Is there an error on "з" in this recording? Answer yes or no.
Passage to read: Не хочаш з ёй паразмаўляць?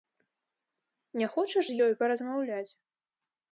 no